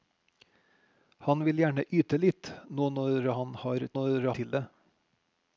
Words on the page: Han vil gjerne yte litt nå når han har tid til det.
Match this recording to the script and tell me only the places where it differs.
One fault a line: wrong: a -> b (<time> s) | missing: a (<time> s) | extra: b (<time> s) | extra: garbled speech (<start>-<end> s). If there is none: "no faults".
wrong: tid -> når (3.9 s)